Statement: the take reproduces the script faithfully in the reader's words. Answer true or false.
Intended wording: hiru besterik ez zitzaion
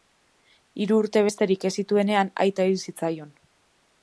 false